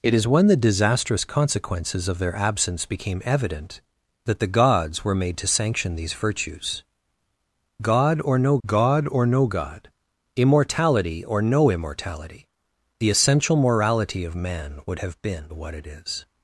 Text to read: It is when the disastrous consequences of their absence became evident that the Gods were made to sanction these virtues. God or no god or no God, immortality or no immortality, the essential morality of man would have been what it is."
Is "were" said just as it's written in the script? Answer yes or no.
yes